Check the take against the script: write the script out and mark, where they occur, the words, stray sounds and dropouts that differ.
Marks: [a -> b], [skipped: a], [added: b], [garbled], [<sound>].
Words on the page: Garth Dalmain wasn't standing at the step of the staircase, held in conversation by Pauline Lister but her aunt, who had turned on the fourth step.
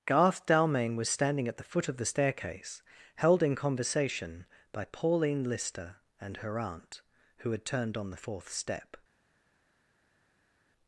Garth Dalmain [wasn't -> was] standing at the [step -> foot] of the staircase, held in conversation by Pauline Lister [but -> and] her aunt, who had turned on the fourth step.